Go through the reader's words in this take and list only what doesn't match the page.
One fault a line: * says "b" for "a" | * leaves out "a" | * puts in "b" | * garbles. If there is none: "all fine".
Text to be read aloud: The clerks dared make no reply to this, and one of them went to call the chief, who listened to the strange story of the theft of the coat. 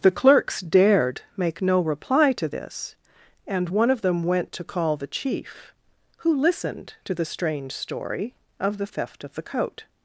all fine